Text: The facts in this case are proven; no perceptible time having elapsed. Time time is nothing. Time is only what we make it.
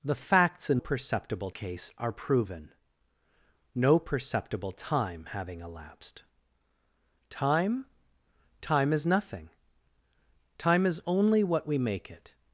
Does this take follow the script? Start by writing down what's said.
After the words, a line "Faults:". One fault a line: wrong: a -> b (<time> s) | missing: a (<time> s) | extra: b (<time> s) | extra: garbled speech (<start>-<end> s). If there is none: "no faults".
The facts in perceptible case are proven; no perceptible time having elapsed. Time time is nothing. Time is only what we make it.
Faults:
wrong: this -> perceptible (0.8 s)